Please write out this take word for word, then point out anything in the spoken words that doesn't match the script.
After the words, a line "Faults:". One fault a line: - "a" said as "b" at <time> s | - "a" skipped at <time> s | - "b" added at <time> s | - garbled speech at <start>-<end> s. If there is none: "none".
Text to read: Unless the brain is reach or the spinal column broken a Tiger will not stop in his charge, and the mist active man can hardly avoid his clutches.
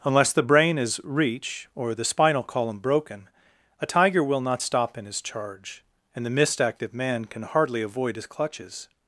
Unless the brain is reach or the spinal column broken a Tiger will not stop in his charge, and the mist active man can hardly avoid his clutches.
Faults:
none